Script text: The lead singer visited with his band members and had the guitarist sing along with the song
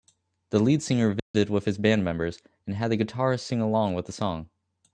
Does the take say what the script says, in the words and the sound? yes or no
no